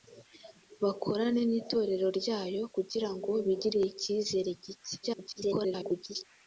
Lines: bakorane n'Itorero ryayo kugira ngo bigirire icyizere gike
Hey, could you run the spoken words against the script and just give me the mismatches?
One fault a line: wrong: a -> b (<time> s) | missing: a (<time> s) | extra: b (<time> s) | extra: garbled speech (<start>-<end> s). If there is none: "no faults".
extra: garbled speech (5.0-6.2 s)